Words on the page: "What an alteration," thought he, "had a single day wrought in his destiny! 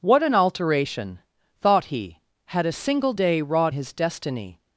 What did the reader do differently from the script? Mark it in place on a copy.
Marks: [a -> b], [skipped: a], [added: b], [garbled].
"What an alteration," thought he, "had a single day wrought [skipped: in] his destiny!